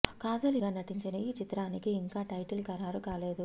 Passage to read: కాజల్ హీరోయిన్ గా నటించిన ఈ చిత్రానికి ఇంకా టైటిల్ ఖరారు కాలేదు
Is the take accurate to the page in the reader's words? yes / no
no